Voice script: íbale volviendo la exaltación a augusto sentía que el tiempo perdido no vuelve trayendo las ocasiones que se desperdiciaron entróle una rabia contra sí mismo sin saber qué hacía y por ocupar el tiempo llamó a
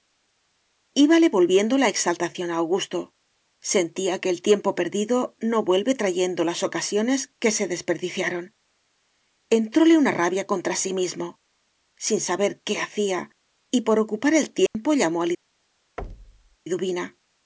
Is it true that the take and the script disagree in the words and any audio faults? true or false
true